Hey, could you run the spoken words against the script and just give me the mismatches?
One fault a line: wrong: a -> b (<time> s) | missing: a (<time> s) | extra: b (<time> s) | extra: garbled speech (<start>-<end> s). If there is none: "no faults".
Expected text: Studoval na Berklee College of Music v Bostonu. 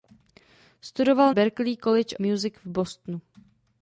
missing: na (1.3 s)
missing: of (2.2 s)